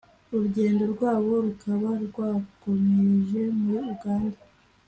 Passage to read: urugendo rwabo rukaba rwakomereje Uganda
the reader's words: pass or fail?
fail